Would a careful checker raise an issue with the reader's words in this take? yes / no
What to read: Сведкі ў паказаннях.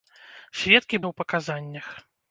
no